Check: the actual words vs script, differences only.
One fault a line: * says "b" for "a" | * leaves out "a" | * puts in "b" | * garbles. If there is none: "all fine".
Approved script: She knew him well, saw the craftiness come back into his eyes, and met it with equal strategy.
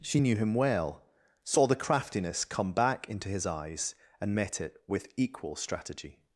all fine